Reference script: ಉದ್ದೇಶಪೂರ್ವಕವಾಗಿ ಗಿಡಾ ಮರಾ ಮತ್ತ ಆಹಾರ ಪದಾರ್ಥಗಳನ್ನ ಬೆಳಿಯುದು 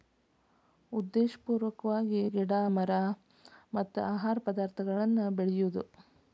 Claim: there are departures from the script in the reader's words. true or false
false